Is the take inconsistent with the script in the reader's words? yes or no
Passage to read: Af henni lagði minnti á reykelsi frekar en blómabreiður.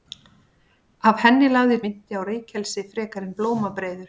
no